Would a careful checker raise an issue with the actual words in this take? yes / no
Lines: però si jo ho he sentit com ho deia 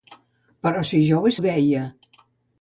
yes